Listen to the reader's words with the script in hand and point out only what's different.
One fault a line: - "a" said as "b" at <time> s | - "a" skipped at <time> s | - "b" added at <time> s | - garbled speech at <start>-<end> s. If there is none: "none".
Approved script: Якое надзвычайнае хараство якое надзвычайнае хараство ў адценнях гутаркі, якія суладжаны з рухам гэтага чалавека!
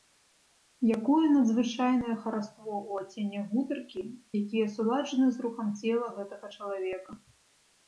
- "якое надзвычайнае хараство" skipped at 2.7 s
- "цела" added at 5.8 s